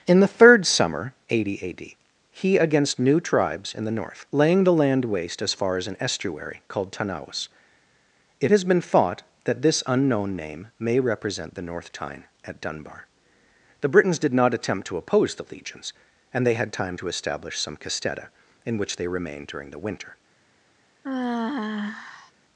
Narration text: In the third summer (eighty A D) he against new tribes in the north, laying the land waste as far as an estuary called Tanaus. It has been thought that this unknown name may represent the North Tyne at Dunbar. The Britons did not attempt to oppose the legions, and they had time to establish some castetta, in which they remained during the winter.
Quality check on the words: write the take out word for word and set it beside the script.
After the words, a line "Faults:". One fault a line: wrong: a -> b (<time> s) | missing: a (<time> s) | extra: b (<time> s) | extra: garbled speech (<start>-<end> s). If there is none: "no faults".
In the third summer (eighty A D) he against new tribes in the north, laying the land waste as far as an estuary called Tanaus. It has been thought that this unknown name may represent the North Tyne at Dunbar. The Britons did not attempt to oppose the legions, and they had time to establish some castetta, in which they remained during the winter.
Faults:
no faults